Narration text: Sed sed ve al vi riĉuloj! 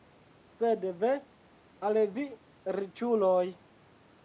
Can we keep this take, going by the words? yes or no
no